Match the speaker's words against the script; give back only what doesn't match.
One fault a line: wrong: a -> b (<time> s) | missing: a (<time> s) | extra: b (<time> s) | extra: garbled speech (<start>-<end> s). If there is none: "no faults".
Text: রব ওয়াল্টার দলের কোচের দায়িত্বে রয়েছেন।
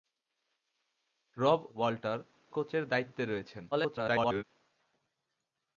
missing: দলের (2.2 s)
extra: garbled speech (3.7-4.4 s)